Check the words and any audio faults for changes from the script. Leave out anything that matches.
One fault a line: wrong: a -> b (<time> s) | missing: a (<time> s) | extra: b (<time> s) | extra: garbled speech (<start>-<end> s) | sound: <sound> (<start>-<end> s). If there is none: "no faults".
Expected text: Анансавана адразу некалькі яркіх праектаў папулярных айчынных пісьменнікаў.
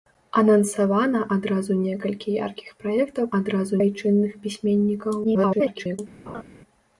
wrong: папулярных -> адразу (3.4 s)
extra: garbled speech (5.2-6.0 s)
sound: laugh (6.3-6.4 s)